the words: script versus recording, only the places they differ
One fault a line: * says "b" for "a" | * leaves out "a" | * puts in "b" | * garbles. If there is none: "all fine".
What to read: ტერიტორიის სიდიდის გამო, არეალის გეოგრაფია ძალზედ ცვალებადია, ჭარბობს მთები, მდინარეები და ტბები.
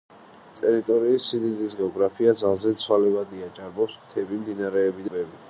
* leaves out "გამო არეალის"
* leaves out "და"